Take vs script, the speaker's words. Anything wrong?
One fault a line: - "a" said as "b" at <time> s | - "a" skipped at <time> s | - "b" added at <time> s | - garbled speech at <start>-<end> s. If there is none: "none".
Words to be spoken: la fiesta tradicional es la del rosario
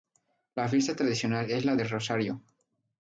none